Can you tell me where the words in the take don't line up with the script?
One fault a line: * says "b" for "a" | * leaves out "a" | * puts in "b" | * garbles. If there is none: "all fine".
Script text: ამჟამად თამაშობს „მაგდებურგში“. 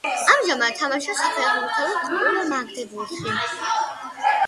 * puts in "საფეხბურთო კლუბ"